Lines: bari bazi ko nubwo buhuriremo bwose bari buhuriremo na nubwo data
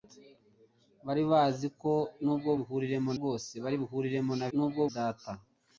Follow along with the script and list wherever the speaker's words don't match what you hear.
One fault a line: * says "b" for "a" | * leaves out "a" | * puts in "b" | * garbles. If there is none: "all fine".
all fine